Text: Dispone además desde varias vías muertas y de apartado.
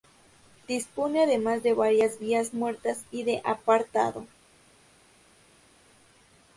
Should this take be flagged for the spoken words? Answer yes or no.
yes